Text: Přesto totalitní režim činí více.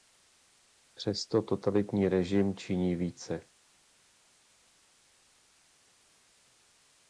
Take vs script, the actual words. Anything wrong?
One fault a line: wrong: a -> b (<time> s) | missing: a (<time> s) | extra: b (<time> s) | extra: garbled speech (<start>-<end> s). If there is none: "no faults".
no faults